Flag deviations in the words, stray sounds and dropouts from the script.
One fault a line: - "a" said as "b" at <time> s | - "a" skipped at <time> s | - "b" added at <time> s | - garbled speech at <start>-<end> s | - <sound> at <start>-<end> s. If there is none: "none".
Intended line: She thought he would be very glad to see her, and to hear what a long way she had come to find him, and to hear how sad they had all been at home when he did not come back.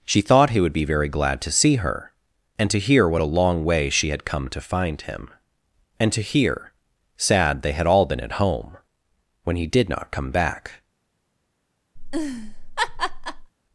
- "how" skipped at 6.7 s
- laugh at 12.0-13.5 s